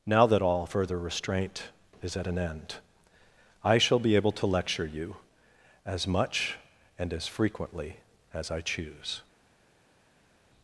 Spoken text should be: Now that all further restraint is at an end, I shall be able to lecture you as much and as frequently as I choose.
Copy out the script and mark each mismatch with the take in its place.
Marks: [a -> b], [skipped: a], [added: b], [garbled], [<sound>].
Now that all further restraint is at an end, I shall be able to lecture you as much and as frequently as I choose.